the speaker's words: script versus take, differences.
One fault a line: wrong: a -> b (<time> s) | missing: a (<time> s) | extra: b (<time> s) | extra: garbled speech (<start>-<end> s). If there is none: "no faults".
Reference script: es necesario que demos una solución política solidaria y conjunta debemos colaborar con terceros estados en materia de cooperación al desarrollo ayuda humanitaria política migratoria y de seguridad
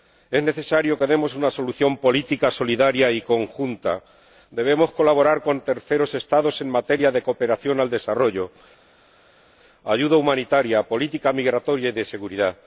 no faults